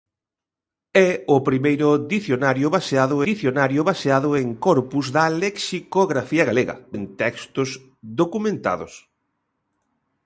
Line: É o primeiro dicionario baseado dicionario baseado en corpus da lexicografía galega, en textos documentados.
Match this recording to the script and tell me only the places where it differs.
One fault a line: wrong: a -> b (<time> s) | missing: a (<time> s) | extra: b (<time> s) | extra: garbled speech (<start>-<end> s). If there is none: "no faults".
no faults